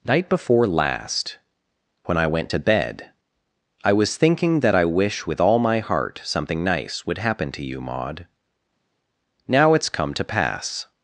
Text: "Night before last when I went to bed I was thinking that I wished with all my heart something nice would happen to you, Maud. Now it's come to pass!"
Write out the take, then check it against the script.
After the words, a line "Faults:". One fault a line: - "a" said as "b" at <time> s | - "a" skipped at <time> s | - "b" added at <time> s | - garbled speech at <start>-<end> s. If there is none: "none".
"Night before last when I went to bed I was thinking that I wish with all my heart something nice would happen to you, Maud. Now it's come to pass!"
Faults:
- "wished" said as "wish" at 4.8 s